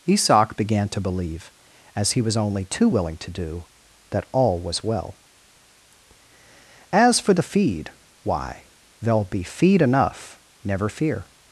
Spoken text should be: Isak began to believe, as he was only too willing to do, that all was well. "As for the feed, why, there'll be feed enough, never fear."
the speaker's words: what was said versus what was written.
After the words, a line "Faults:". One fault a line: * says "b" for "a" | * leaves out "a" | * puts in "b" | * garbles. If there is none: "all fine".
Isak began to believe, as he was only too willing to do, that all was well. "As for the feed, why, there'll be feed enough, never fear."
Faults:
all fine